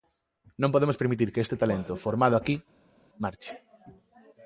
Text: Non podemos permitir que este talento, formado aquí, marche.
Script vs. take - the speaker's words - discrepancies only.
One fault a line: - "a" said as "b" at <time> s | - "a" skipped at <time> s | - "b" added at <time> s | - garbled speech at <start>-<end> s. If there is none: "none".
none